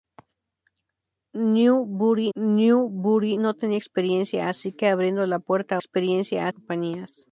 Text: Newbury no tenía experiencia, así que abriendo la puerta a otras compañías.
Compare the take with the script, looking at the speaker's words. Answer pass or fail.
fail